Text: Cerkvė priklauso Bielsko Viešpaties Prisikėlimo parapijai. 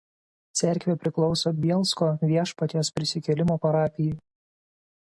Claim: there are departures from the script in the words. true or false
false